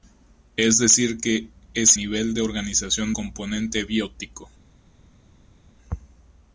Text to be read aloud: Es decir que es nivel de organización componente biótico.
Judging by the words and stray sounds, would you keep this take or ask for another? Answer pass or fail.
pass